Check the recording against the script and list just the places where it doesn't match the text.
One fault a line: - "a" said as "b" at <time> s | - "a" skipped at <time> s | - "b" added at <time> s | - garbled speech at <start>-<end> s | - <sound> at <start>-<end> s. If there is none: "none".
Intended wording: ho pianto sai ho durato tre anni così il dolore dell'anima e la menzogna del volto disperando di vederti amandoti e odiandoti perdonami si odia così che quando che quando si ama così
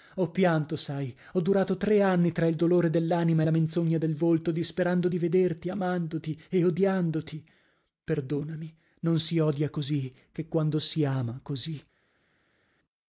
- "così" said as "tra" at 2.3 s
- "non" added at 9.0 s
- "che quando" skipped at 10.8 s